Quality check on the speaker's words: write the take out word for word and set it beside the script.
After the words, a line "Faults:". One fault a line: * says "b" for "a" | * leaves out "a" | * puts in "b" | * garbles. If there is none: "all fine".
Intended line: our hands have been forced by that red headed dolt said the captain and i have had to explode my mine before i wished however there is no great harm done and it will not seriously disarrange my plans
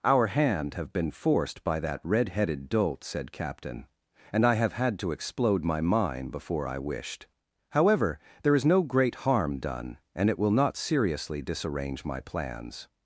our hand have been forced by that red headed dolt said captain and i have had to explode my mine before i wished however there is no great harm done and it will not seriously disarrange my plans
Faults:
* says "hand" for "hands"
* leaves out "the"